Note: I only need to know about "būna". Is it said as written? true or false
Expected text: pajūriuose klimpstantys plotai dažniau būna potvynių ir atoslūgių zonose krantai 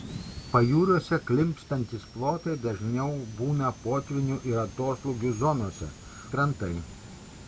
true